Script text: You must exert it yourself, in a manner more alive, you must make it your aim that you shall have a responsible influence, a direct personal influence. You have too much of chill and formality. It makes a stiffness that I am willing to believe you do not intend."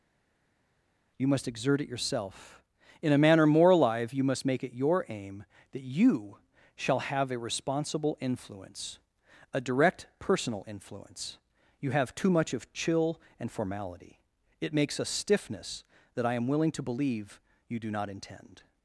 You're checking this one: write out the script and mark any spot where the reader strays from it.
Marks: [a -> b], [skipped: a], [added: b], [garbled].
You must exert it yourself, in a manner more alive, you must make it your aim that you shall have a responsible influence, a direct personal influence. You have too much of chill and formality. It makes a stiffness that I am willing to believe you do not intend."